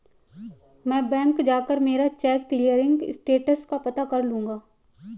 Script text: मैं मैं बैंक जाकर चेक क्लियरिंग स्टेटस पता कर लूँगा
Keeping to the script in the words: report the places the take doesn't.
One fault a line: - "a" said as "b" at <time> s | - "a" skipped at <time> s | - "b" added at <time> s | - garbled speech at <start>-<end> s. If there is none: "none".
- "मैं" skipped at 1.1 s
- "मेरा" added at 1.8 s
- "का" added at 3.6 s